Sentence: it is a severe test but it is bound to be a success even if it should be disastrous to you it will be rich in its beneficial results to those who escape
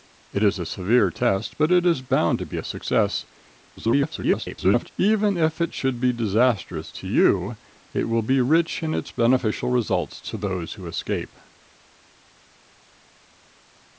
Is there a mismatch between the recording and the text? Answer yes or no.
yes